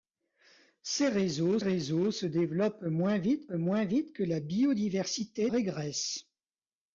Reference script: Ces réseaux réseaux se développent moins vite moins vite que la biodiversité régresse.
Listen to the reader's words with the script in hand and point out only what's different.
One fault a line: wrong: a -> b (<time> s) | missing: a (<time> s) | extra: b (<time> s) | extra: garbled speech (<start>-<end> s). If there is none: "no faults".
no faults